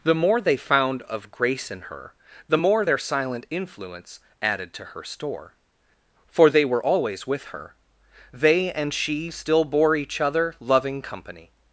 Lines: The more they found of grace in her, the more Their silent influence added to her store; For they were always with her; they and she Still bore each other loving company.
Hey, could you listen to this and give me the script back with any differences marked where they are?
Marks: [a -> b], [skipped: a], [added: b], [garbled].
The more they found of grace in her, the more Their silent influence added to her store; For they were always with her; they and she Still bore each other loving company.